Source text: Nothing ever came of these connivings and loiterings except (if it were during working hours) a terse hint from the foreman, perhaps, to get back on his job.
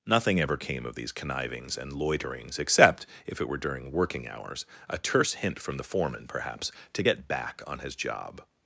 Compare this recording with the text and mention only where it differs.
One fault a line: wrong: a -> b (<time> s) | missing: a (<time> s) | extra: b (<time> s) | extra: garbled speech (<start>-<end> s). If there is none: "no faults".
no faults